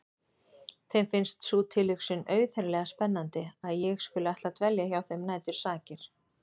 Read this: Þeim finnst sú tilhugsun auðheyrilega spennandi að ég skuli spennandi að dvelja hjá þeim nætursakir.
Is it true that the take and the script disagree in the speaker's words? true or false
true